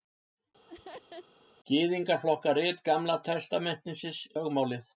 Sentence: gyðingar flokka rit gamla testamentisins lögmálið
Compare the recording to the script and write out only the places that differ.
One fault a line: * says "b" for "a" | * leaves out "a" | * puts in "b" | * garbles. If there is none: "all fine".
all fine